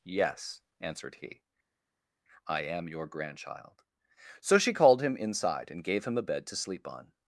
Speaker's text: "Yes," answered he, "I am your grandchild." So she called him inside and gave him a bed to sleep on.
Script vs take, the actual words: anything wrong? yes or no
no